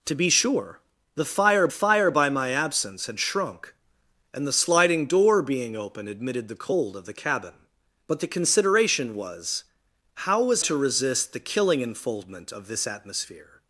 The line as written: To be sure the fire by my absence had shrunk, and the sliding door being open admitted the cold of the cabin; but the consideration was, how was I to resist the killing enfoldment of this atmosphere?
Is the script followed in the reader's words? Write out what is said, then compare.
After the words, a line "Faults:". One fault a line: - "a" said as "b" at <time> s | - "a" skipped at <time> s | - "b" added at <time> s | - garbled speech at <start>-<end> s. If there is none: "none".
To be sure the fire fire by my absence had shrunk, and the sliding door being open admitted the cold of the cabin; but the consideration was, how was to resist the killing enfoldment of this atmosphere?
Faults:
- "fire" added at 1.7 s
- "I" skipped at 10.6 s